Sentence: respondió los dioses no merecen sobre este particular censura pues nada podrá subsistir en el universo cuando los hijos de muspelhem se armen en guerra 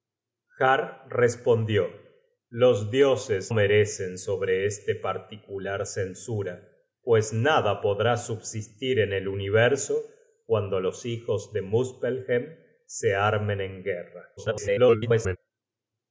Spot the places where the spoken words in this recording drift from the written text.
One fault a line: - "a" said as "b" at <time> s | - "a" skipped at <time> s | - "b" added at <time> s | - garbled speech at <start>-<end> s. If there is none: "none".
- "no" skipped at 3.5 s
- garbled speech at 14.4-15.4 s